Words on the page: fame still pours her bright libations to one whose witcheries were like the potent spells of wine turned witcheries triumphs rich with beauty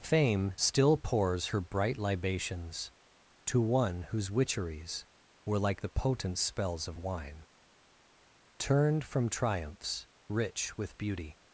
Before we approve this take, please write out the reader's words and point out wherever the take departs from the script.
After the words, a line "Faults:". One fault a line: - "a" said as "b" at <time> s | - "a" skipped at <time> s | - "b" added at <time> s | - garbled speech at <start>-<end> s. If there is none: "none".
fame still pours her bright libations to one whose witcheries were like the potent spells of wine turned from triumphs rich with beauty
Faults:
- "witcheries" said as "from" at 9.0 s